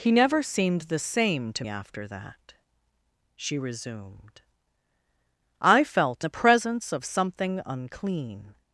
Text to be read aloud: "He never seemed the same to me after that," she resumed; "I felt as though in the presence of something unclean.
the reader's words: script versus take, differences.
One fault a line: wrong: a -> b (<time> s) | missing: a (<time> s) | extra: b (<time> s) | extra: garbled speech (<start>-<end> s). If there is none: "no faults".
missing: me (1.6 s)
missing: as though in (6.2 s)